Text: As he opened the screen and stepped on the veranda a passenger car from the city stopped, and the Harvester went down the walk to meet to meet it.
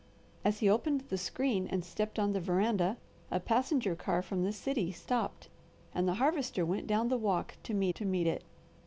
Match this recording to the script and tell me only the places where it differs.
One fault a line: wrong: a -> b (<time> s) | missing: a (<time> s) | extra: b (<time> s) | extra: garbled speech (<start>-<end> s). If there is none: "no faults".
no faults